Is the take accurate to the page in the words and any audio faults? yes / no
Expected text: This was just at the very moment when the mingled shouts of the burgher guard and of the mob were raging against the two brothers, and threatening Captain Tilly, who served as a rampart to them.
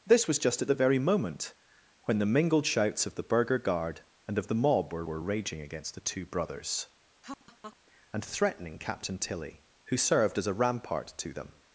no